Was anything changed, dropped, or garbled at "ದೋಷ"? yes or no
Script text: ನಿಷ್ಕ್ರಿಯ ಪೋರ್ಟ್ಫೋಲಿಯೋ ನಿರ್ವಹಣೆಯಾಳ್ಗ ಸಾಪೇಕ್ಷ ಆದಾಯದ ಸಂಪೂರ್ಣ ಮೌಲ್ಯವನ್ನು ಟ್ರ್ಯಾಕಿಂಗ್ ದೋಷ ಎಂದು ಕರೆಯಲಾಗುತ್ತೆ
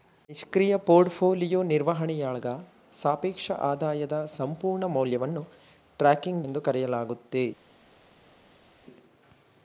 yes